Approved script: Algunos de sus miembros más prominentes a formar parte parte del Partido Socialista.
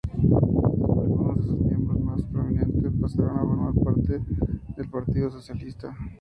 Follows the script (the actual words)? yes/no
no